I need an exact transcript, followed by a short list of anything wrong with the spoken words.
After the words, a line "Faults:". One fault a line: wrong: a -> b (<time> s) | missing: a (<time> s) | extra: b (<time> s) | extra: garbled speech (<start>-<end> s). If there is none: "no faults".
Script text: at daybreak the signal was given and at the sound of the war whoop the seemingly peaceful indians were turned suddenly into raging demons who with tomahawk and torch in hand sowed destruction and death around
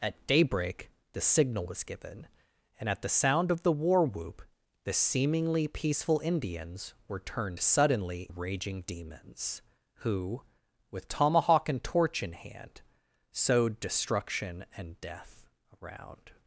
at daybreak the signal was given and at the sound of the war whoop the seemingly peaceful indians were turned suddenly raging demons who with tomahawk and torch in hand sowed destruction and death around
Faults:
missing: into (8.3 s)